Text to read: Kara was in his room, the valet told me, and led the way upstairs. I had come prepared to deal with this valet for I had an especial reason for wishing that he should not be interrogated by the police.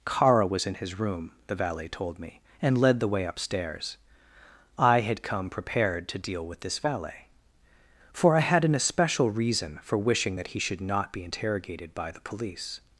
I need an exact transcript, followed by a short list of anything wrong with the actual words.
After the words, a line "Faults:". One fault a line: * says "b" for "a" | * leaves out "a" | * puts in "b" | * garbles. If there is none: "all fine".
Kara was in his room, the valet told me, and led the way upstairs. I had come prepared to deal with this valet for I had an especial reason for wishing that he should not be interrogated by the police.
Faults:
all fine